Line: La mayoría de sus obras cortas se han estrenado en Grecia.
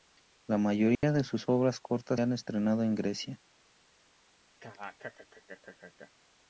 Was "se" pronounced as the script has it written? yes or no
no